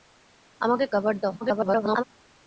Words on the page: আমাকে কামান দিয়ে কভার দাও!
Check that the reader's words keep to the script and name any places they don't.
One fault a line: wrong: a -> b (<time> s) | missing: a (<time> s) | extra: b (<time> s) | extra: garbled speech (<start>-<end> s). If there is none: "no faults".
missing: কামান দিয়ে (0.8 s)
extra: garbled speech (1.4-2.0 s)